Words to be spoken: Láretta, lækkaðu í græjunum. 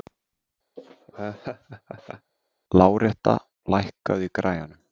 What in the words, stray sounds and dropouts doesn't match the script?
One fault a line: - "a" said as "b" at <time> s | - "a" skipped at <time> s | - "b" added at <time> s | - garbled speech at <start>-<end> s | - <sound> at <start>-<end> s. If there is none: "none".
- laugh at 0.8-2.3 s